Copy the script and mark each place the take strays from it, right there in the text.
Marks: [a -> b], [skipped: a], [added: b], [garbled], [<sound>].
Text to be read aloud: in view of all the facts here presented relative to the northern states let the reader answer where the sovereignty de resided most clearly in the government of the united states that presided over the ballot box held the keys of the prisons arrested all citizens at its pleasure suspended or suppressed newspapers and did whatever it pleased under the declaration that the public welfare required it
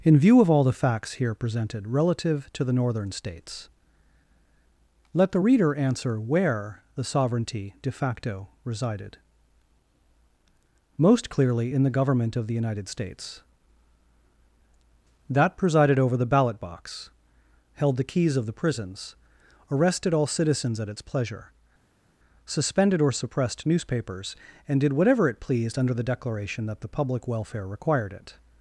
in view of all the facts here presented relative to the northern states let the reader answer where the sovereignty de [added: facto] resided most clearly in the government of the united states that presided over the ballot box held the keys of the prisons arrested all citizens at its pleasure suspended or suppressed newspapers and did whatever it pleased under the declaration that the public welfare required it